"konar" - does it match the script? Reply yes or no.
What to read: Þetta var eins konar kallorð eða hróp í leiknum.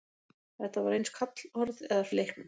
no